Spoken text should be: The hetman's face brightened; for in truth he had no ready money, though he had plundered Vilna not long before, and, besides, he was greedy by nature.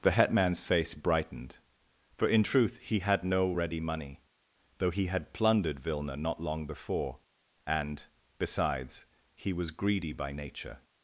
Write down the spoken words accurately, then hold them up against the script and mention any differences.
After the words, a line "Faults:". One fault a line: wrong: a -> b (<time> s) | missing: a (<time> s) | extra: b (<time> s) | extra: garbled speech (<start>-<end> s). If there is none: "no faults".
The hetman's face brightened; for in truth he had no ready money, though he had plundered Vilna not long before, and, besides, he was greedy by nature.
Faults:
no faults